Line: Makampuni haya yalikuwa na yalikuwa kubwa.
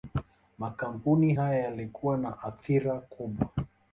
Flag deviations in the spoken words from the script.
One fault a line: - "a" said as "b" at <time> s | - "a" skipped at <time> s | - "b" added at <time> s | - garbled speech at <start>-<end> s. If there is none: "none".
- "yalikuwa" said as "athira" at 2.4 s